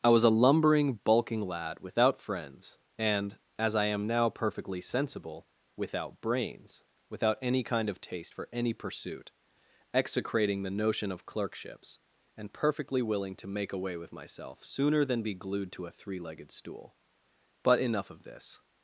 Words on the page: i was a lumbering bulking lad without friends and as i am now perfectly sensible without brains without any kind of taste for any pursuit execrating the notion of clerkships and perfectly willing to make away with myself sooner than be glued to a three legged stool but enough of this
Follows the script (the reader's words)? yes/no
yes